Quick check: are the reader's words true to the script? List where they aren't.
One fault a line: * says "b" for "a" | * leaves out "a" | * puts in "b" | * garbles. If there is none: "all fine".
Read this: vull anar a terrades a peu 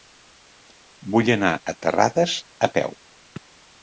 all fine